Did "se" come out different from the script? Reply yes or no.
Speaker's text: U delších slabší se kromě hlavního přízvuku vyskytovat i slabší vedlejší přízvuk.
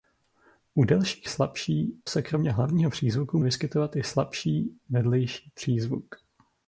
no